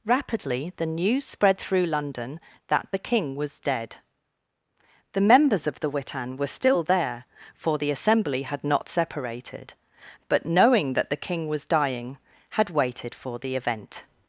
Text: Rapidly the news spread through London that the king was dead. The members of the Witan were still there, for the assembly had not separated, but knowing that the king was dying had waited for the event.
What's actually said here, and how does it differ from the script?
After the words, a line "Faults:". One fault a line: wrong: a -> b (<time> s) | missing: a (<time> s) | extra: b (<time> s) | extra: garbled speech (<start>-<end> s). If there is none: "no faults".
Rapidly the news spread through London that the king was dead. The members of the Witan were still there, for the assembly had not separated, but knowing that the king was dying had waited for the event.
Faults:
no faults